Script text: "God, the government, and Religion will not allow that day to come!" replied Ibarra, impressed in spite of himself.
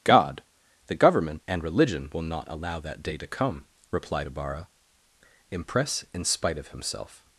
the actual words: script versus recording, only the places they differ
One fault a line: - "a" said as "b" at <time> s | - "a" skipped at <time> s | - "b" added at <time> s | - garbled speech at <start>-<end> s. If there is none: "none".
- "impressed" said as "impress" at 5.5 s